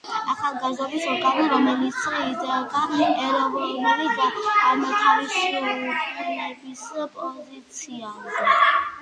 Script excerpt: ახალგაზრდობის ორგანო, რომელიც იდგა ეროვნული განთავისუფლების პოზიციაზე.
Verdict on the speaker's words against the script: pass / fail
pass